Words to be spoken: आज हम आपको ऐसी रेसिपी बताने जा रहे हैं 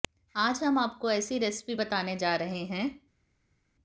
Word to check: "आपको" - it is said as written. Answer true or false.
true